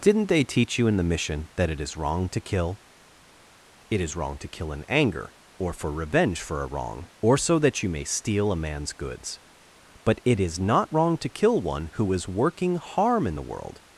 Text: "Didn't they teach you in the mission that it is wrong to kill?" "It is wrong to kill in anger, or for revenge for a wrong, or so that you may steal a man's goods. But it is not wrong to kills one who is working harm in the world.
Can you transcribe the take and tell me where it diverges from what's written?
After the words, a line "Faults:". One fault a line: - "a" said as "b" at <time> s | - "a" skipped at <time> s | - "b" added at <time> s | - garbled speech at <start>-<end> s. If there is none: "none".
"Didn't they teach you in the mission that it is wrong to kill?" "It is wrong to kill in anger, or for revenge for a wrong, or so that you may steal a man's goods. But it is not wrong to kill one who is working harm in the world.
Faults:
- "kills" said as "kill" at 11.3 s